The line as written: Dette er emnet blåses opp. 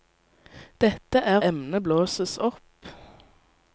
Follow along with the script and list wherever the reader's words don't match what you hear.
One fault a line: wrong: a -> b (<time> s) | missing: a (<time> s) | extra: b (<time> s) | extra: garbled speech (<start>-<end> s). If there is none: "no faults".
no faults